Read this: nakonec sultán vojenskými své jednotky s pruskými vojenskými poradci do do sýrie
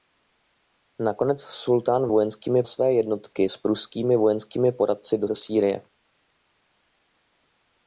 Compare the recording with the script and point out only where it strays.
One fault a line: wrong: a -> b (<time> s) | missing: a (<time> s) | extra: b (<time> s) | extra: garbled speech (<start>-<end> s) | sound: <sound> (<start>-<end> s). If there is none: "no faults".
no faults